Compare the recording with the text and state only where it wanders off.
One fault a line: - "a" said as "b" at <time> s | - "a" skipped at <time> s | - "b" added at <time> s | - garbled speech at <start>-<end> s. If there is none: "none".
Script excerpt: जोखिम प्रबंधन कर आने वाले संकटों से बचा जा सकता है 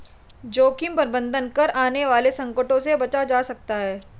none